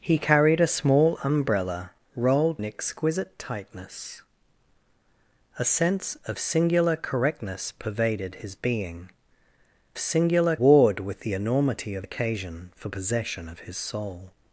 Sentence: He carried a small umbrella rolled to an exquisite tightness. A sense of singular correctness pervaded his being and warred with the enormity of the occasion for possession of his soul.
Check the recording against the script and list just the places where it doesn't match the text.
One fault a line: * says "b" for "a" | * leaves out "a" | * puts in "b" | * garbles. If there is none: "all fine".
* leaves out "to"
* says "singular" for "and"
* leaves out "the"